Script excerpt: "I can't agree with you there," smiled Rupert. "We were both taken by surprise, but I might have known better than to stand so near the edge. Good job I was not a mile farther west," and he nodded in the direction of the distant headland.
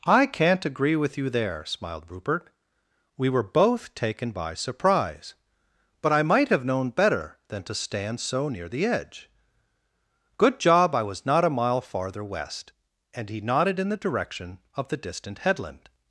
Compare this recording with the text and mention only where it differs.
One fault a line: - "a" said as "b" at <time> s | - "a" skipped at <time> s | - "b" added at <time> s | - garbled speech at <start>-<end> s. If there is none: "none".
none